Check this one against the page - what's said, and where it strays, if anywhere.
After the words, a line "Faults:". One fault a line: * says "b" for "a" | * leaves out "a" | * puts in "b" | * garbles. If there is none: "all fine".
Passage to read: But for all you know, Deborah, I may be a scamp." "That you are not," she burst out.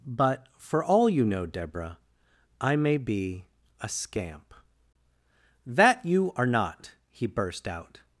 But for all you know, Deborah, I may be a scamp." "That you are not," he burst out.
Faults:
* says "he" for "she"